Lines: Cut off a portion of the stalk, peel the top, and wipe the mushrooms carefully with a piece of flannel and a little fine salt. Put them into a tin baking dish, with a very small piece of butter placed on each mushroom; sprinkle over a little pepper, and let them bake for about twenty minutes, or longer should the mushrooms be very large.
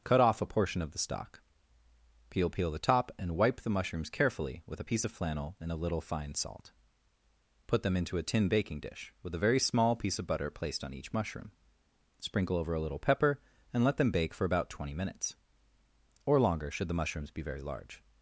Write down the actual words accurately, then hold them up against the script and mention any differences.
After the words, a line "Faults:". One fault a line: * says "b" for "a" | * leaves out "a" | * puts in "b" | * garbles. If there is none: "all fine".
Cut off a portion of the stalk, peel peel the top, and wipe the mushrooms carefully with a piece of flannel and a little fine salt. Put them into a tin baking dish, with a very small piece of butter placed on each mushroom; sprinkle over a little pepper, and let them bake for about twenty minutes, or longer should the mushrooms be very large.
Faults:
* puts in "peel"